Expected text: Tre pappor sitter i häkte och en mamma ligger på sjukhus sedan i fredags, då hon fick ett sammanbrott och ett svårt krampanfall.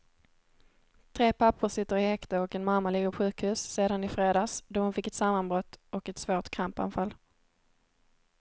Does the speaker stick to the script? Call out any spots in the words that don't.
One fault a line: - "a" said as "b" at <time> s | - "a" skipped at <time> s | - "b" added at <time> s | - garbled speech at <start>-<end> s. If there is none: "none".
- "på" skipped at 3.1 s